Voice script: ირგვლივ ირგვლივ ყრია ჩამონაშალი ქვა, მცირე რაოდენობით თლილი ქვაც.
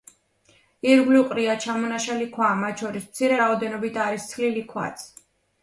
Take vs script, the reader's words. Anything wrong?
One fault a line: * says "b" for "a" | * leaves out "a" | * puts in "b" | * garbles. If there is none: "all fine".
* leaves out "ირგვლივ"
* puts in "მათ შორის"
* puts in "არის"